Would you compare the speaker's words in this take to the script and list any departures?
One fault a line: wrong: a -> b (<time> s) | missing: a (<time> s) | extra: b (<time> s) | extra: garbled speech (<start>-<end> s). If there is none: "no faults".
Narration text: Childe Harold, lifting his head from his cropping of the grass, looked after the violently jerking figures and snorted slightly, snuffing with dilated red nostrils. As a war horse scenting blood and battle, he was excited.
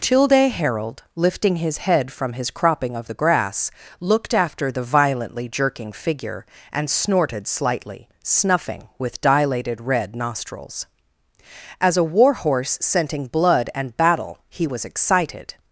wrong: figures -> figure (5.9 s)